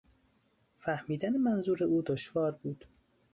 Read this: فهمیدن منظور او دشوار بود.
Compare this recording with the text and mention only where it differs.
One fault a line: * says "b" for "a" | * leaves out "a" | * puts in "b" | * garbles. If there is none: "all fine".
all fine